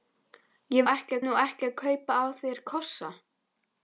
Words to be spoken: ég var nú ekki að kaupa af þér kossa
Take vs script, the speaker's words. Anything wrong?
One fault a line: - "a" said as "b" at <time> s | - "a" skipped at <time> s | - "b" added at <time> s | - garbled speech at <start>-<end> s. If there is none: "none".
- "var" said as "ekki" at 0.9 s